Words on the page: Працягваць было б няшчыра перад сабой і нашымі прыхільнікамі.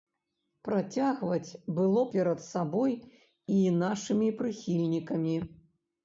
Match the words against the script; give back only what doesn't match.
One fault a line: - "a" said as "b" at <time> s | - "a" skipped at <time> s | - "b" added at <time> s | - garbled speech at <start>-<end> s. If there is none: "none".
- "б няшчыра" skipped at 2.0 s